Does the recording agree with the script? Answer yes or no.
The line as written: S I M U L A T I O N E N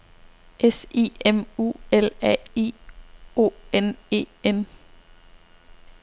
no